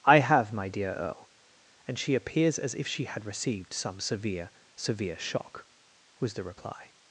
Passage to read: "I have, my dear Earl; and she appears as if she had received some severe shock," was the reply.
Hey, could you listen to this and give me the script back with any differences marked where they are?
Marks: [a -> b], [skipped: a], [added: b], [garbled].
"I have, my dear Earl; and she appears as if she had received some severe [added: severe] shock," was the reply.